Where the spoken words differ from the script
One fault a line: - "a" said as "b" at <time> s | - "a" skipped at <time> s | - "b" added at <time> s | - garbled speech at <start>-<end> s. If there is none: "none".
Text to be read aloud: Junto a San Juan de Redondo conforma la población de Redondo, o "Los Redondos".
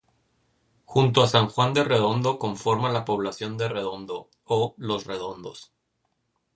none